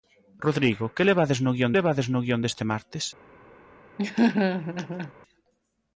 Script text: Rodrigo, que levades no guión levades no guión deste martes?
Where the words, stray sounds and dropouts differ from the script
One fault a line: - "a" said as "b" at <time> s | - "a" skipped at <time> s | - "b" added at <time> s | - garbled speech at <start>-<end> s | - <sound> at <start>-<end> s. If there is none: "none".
- laugh at 4.0-5.1 s